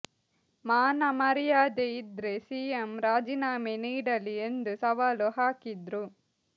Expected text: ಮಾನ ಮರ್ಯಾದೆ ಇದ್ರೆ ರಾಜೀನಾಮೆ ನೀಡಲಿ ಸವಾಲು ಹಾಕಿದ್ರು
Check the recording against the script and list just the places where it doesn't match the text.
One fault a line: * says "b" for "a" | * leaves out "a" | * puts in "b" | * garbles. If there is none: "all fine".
* puts in "ಸಿಎಂ"
* puts in "ಎಂದು"